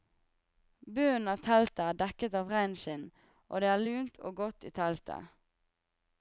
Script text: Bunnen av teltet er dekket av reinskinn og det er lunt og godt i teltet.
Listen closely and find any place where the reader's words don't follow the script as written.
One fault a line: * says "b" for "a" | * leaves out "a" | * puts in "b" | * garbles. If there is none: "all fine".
all fine